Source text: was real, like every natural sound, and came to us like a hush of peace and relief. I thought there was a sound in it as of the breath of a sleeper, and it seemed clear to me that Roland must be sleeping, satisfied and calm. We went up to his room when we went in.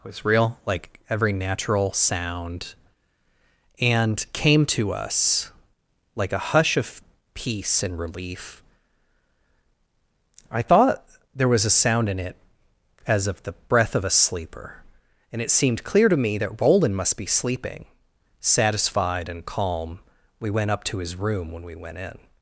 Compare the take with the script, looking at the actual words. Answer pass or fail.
pass